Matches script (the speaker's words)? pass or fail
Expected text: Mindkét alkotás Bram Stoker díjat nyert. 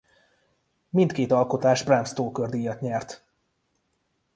pass